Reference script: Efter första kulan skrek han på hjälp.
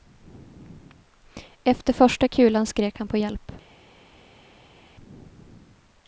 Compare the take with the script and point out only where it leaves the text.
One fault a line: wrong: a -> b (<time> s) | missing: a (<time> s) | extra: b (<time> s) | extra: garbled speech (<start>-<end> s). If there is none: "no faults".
no faults